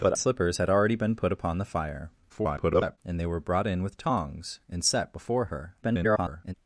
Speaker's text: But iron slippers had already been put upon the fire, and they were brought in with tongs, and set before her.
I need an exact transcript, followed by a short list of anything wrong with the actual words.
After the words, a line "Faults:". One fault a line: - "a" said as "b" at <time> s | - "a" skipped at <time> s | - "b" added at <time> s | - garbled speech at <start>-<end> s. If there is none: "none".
But slippers had already been put upon the fire, [garbled] and they were brought in with tongs, and set before her. [garbled]
Faults:
- "iron" skipped at 0.2 s
- garbled speech at 2.3-3.0 s
- garbled speech at 5.8-6.5 s